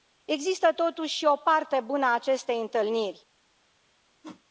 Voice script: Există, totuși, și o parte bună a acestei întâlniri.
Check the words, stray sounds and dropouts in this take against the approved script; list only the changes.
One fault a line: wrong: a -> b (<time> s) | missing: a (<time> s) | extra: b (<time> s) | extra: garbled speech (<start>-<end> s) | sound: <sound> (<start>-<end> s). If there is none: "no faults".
sound: whoosh (4.2-4.4 s)